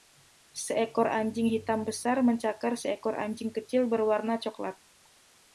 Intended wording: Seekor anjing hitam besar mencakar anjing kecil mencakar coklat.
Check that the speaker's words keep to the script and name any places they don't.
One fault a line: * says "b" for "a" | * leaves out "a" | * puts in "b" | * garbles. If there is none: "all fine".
* puts in "seekor"
* says "berwarna" for "mencakar"